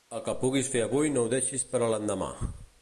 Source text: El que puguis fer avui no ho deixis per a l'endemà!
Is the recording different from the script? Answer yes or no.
no